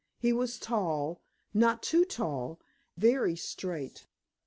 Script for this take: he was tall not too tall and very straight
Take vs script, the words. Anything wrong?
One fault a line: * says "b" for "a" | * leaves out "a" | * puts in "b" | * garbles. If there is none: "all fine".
* leaves out "and"